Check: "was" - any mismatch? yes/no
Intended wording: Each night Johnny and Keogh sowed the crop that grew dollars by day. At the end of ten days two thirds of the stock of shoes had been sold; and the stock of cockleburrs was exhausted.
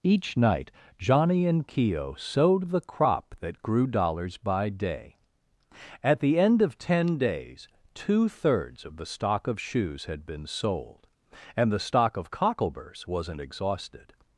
yes